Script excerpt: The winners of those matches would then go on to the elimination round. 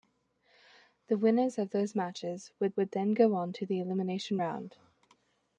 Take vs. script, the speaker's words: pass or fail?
fail